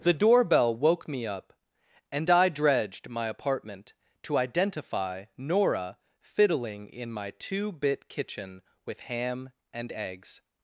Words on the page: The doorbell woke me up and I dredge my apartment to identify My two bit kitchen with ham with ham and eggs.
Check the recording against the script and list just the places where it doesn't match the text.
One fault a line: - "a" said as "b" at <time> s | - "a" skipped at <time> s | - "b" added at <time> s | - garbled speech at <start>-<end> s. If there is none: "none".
- "dredge" said as "dredged" at 2.5 s
- "Nora fiddling in" added at 5.4 s
- "with ham" skipped at 9.5 s